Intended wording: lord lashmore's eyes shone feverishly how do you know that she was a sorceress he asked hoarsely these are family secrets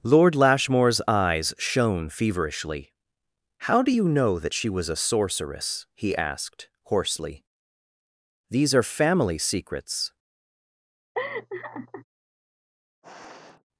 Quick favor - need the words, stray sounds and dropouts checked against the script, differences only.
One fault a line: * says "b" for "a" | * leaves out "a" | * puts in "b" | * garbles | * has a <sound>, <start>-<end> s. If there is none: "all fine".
* has a laugh, 11.1-12.0 s
* has a sniff, 13.0-13.6 s